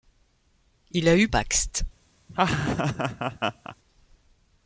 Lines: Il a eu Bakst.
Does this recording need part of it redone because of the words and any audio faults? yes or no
yes